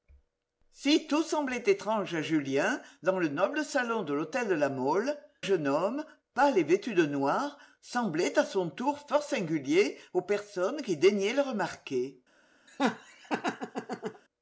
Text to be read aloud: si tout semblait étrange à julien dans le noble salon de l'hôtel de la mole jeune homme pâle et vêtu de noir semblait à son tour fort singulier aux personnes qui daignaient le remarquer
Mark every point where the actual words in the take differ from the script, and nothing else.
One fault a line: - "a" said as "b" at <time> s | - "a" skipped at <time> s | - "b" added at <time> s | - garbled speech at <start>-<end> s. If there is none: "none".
none